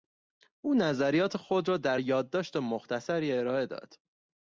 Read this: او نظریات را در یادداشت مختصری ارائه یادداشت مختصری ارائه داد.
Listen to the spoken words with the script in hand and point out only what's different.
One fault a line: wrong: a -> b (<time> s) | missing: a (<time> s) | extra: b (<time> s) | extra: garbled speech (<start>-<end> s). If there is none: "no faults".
extra: خود (1.4 s)
missing: یادداشت مختصری ارائه (3.7 s)